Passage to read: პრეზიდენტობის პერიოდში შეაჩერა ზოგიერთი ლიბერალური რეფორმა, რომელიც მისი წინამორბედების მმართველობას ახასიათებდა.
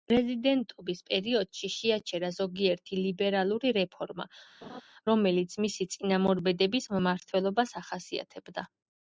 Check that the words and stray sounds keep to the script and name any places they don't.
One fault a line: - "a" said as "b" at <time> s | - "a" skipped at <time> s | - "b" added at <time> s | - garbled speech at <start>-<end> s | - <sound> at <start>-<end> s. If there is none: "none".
- laugh at 4.6-4.8 s